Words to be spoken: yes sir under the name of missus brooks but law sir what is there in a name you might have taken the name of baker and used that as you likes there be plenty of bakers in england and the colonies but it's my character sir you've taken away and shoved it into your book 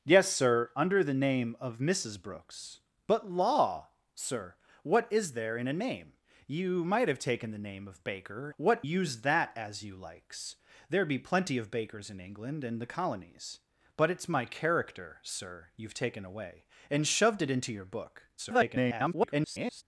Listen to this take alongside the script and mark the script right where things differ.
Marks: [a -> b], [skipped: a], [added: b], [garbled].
yes sir under the name of missus brooks but law sir what is there in a name you might have taken the name of baker [and -> what] used that as you likes there be plenty of bakers in england and the colonies but it's my character sir you've taken away and shoved it into your book [garbled]